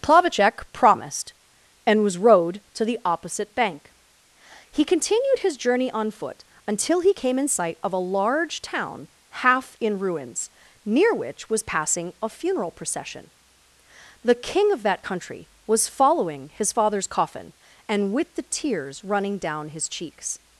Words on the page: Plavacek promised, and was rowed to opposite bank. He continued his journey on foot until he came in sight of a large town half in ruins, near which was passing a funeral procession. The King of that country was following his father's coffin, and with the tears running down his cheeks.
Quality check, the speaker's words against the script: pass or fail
fail